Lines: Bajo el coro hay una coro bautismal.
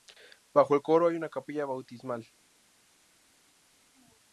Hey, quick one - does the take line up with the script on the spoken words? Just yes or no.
no